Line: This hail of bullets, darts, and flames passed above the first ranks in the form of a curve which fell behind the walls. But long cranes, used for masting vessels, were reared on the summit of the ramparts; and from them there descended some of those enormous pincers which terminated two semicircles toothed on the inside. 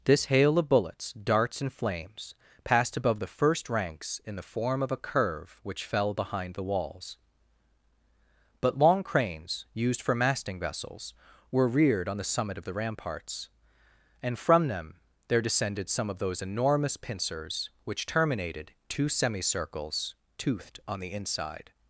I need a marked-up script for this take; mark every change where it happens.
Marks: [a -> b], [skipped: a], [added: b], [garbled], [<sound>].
This hail of bullets, darts, and flames passed above the first ranks in the form of a curve which fell behind the walls. But long cranes, used for masting vessels, were reared on the summit of the ramparts; and from them there descended some of those enormous pincers which terminated two semicircles toothed on the inside.